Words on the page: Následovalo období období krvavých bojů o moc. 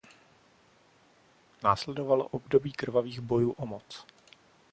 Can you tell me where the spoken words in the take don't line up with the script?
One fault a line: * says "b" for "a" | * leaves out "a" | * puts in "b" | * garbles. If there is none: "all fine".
* leaves out "období"